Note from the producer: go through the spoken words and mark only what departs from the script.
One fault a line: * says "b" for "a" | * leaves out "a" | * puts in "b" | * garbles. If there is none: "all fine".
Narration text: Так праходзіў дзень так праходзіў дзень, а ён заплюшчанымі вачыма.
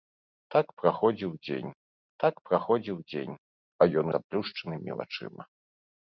all fine